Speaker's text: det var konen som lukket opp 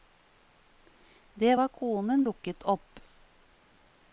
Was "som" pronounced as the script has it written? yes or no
no